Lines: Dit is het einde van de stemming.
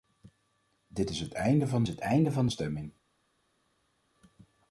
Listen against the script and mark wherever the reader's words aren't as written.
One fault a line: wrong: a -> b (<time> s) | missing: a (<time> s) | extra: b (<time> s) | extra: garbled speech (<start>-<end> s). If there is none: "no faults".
extra: het einde van (1.9 s)